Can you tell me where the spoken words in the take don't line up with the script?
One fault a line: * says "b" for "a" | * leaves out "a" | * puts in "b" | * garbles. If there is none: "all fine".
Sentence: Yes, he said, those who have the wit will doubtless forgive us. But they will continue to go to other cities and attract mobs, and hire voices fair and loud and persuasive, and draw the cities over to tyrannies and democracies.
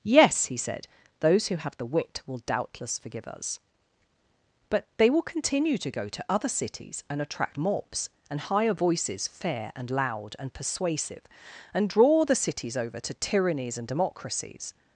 all fine